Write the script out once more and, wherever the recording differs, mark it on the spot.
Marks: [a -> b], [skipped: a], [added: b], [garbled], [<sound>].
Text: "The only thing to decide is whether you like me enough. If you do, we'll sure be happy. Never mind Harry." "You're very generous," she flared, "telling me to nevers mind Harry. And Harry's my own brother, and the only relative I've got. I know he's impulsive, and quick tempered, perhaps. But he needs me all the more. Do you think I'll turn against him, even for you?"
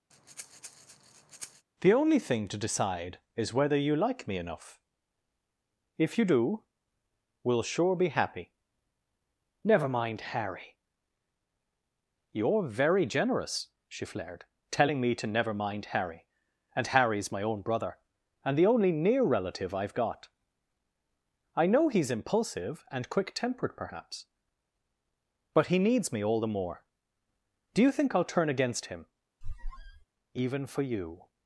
[breath] "The only thing to decide is whether you like me enough. If you do, we'll sure be happy. Never mind Harry." "You're very generous," she flared, "telling me to [nevers -> never] mind Harry. And Harry's my own brother, and the only [added: near] relative I've got. I know he's impulsive, and quick tempered, perhaps. But he needs me all the more. Do you think I'll turn against him, [squeak] even for you?"